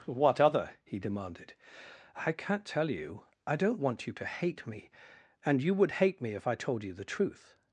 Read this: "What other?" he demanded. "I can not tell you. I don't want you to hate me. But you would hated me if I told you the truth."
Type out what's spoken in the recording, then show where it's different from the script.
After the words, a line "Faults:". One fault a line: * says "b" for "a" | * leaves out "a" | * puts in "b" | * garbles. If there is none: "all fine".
"What other?" he demanded. "I can not tell you. I don't want you to hate me. And you would hate me if I told you the truth."
Faults:
* says "And" for "But"
* says "hate" for "hated"